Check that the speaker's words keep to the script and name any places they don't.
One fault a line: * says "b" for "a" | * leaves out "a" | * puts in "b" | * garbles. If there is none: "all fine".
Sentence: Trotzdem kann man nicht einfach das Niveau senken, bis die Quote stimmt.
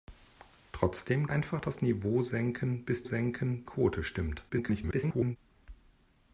* leaves out "kann man nicht"
* says "senken" for "die"
* garbles